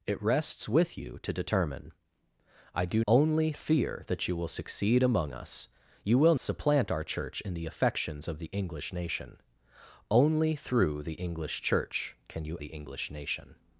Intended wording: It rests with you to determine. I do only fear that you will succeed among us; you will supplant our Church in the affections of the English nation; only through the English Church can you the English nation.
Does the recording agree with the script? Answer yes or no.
yes